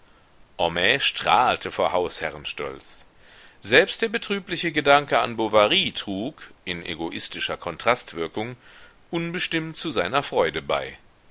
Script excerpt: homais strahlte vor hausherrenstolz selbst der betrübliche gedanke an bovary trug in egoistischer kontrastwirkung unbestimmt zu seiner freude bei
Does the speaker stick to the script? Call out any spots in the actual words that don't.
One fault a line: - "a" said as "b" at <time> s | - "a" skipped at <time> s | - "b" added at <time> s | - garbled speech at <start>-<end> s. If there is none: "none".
none